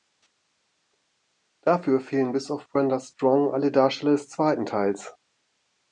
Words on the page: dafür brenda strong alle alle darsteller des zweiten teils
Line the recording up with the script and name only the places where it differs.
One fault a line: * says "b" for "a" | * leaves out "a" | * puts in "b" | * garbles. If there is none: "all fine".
* puts in "fehlen bis auf"
* leaves out "alle"